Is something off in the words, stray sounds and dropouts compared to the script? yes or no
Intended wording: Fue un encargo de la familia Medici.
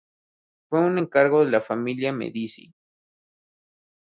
no